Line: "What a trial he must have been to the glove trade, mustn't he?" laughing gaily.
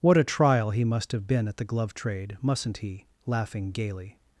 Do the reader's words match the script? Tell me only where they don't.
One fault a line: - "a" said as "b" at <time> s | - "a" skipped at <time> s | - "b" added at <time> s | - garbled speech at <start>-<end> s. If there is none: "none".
- "to" said as "at" at 1.5 s